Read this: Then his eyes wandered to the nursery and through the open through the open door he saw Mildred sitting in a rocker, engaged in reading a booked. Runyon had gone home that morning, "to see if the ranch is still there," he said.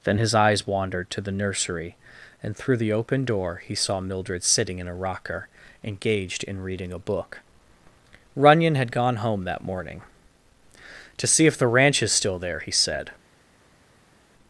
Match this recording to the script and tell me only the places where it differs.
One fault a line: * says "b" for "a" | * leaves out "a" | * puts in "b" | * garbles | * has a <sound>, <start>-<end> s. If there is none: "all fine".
* leaves out "through the open"
* says "book" for "booked"